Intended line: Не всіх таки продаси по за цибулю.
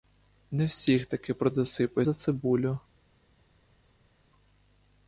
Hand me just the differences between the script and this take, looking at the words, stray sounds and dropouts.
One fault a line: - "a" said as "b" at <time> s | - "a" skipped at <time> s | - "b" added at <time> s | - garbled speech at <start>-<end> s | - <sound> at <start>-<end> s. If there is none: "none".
none